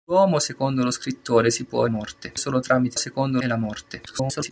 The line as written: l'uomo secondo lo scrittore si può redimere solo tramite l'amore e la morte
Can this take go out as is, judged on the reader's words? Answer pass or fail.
fail